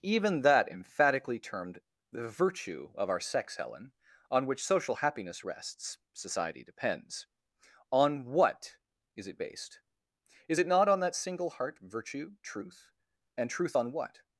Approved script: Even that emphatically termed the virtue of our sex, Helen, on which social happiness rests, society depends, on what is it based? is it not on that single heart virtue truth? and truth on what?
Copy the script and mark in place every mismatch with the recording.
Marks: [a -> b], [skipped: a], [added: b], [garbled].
Even that emphatically termed the virtue of our sex, Helen, on which social happiness rests, society depends, on what is it based? is it not on that single heart virtue truth? and truth on what?